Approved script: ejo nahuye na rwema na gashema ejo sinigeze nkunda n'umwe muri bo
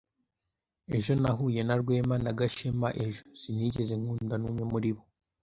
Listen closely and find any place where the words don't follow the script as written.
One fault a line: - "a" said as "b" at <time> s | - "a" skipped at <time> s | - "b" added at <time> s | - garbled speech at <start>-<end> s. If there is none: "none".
none